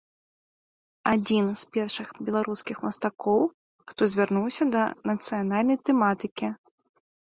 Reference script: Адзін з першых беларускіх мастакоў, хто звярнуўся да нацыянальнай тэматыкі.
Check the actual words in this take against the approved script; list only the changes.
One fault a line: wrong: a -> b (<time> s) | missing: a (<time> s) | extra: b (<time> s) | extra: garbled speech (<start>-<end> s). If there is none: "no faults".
no faults